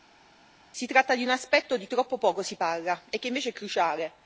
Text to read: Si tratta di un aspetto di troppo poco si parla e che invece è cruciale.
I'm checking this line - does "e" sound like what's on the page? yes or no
yes